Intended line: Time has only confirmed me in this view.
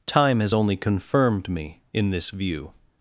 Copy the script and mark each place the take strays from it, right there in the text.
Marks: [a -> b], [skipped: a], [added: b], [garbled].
Time has only confirmed me in this view.